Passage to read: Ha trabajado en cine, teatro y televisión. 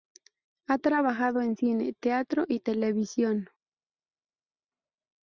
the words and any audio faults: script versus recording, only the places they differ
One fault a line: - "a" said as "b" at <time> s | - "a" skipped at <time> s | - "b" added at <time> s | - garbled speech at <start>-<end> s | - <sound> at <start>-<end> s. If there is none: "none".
none